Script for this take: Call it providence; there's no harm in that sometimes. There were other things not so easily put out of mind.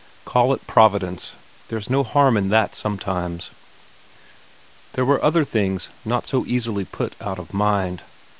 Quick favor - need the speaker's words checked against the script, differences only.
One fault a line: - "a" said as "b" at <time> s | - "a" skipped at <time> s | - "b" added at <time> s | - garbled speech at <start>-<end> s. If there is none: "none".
none